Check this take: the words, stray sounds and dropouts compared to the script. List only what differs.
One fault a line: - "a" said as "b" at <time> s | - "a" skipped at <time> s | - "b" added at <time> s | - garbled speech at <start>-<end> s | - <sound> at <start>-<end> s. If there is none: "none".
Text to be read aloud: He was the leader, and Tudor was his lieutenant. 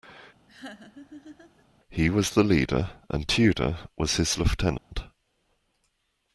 - laugh at 0.5-1.6 s
- dropout at 4.8-4.9 s